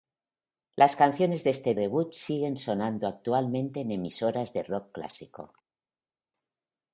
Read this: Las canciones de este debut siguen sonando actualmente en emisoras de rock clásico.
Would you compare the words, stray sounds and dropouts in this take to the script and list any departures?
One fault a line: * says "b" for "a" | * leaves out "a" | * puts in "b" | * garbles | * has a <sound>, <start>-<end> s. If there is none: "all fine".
all fine